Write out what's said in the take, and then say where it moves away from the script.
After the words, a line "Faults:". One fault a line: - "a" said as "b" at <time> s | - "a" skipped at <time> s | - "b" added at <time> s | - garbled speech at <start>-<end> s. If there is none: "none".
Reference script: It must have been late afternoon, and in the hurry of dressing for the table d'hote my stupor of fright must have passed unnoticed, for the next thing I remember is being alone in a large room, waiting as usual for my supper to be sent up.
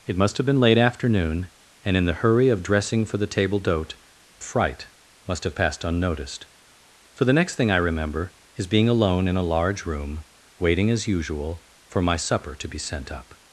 It must have been late afternoon, and in the hurry of dressing for the table d'hote fright must have passed unnoticed, for the next thing I remember is being alone in a large room, waiting as usual for my supper to be sent up.
Faults:
- "my stupor of" skipped at 4.0 s